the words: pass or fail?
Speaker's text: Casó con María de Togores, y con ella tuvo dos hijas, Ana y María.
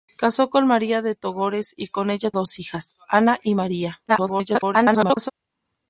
fail